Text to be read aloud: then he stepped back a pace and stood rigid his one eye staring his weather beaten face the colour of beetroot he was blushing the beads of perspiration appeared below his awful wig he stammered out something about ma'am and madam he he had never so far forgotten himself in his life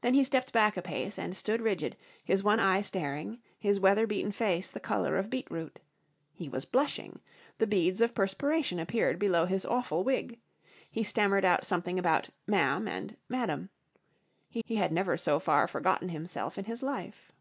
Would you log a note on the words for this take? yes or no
no